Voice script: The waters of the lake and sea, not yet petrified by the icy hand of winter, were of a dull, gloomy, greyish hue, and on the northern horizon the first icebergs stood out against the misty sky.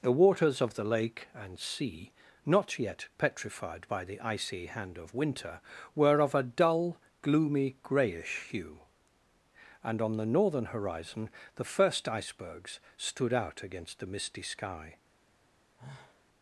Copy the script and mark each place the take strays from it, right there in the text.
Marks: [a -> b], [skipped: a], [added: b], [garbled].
The waters of the lake and sea, not yet petrified by the icy hand of winter, were of a dull, gloomy, greyish hue, and on the northern horizon the first icebergs stood out against the misty sky.